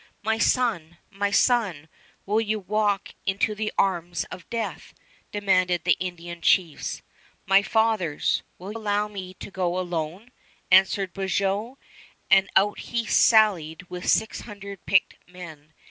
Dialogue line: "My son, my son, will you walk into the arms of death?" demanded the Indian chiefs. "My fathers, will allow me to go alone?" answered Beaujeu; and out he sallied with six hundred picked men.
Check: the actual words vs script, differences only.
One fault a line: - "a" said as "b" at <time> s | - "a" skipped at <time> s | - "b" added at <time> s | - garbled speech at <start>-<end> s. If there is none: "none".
none